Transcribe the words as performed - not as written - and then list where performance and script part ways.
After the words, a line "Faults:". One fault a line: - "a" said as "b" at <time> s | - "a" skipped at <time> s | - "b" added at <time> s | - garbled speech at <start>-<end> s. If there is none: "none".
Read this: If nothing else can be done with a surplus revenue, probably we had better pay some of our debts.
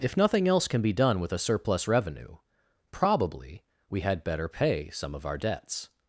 If nothing else can be done with a surplus revenue, probably we had better pay some of our debts.
Faults:
none